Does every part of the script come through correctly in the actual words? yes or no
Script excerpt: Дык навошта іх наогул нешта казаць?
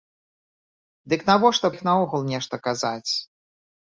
yes